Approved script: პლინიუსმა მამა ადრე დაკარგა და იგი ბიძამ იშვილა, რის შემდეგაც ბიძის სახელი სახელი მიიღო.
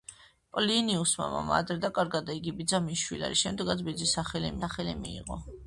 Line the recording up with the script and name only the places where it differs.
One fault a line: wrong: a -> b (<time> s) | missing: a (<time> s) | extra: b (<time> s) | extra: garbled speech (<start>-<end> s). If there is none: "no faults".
no faults